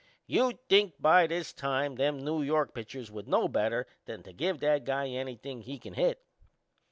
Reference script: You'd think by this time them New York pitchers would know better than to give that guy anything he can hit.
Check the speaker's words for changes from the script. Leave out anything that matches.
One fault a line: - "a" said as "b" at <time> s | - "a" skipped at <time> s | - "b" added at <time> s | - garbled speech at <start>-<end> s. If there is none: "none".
none